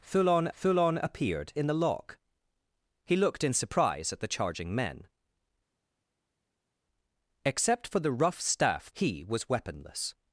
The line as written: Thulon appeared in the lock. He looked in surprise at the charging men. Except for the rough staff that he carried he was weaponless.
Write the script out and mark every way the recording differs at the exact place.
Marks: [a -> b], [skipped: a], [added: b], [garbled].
Thulon [added: thulon] appeared in the lock. He looked in surprise at the charging men. Except for the rough staff [skipped: that he carried] he was weaponless.